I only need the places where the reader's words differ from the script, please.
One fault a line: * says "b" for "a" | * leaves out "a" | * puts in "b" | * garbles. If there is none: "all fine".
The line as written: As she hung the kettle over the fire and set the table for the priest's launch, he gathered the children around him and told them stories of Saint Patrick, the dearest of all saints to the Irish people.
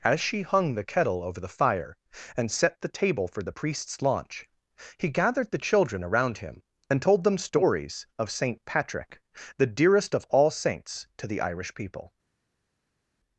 all fine